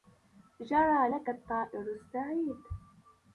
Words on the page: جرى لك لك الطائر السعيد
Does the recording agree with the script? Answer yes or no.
no